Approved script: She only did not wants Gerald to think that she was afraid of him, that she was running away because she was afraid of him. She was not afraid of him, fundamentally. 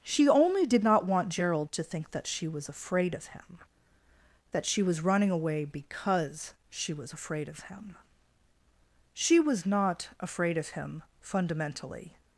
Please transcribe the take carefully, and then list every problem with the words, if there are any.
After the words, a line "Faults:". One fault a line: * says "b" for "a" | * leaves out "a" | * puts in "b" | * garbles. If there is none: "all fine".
She only did not want Gerald to think that she was afraid of him, that she was running away because she was afraid of him. She was not afraid of him, fundamentally.
Faults:
* says "want" for "wants"